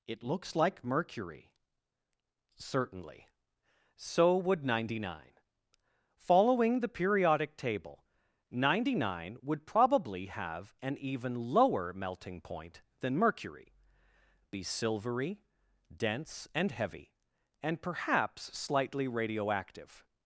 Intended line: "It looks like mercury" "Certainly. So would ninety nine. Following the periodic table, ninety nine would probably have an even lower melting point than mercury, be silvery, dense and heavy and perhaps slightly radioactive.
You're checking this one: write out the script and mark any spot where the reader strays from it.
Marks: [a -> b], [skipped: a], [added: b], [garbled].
"It looks like mercury" "Certainly. So would ninety nine. Following the periodic table, ninety nine would probably have an even lower melting point than mercury, be silvery, dense and heavy and perhaps slightly radioactive.